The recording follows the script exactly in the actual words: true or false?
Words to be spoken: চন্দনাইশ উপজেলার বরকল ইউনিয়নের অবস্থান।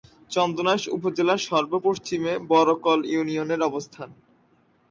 false